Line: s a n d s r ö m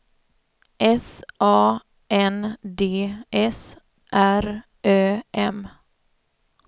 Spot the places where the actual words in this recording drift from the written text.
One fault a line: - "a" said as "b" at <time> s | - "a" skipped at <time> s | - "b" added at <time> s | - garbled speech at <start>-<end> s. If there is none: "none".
none